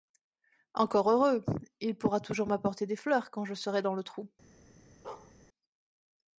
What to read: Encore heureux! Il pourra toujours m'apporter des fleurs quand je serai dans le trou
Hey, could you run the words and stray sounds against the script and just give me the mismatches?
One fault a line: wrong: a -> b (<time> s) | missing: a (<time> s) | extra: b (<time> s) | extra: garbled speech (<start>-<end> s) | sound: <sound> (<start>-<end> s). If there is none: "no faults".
sound: bark (5.0-5.3 s)